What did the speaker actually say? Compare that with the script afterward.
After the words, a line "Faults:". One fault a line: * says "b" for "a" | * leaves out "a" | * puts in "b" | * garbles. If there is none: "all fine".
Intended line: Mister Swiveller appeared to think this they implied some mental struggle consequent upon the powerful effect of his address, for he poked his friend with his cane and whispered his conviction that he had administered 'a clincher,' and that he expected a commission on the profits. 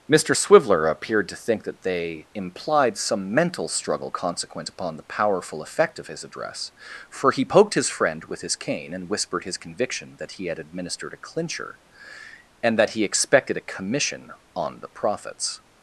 Mister Swiveller appeared to think that they implied some mental struggle consequent upon the powerful effect of his address, for he poked his friend with his cane and whispered his conviction that he had administered 'a clincher,' and that he expected a commission on the profits.
Faults:
* says "that" for "this"